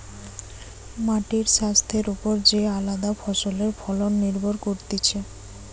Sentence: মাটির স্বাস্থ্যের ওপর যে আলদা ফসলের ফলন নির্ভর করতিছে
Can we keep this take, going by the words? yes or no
yes